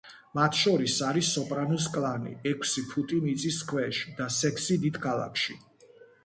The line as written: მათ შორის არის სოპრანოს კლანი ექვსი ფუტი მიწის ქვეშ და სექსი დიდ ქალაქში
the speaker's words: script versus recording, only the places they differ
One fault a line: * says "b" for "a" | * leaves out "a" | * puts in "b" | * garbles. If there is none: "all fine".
all fine